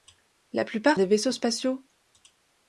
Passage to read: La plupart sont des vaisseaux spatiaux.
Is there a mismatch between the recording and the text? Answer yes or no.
yes